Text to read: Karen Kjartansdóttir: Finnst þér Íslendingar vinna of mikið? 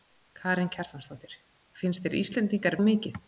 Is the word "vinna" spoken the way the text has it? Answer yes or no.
no